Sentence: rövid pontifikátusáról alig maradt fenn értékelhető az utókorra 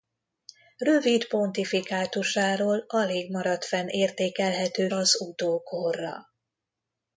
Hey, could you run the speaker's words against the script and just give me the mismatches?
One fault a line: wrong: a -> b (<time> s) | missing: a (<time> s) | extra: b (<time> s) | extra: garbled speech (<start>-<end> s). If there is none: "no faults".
no faults